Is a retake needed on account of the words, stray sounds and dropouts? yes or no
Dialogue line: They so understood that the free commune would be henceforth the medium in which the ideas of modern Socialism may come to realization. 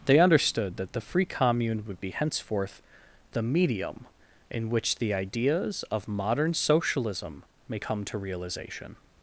yes